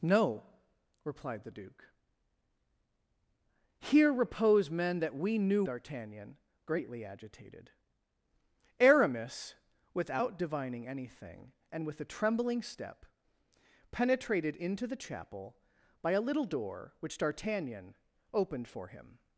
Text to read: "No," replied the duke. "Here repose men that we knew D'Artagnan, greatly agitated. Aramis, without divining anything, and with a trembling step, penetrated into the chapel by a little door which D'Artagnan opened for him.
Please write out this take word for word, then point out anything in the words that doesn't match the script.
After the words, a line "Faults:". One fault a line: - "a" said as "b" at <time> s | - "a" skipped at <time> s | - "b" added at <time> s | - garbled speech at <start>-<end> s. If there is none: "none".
"No," replied the duke. "Here repose men that we knew D'Artagnan, greatly agitated. Aramis, without divining anything, and with a trembling step, penetrated into the chapel by a little door which D'Artagnan opened for him.
Faults:
none